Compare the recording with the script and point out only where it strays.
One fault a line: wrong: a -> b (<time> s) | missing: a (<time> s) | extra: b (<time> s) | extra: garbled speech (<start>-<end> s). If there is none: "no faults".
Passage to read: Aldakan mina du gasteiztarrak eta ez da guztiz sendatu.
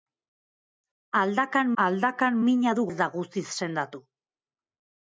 extra: aldakan (1.8 s)
missing: gasteiztarrak eta (2.8 s)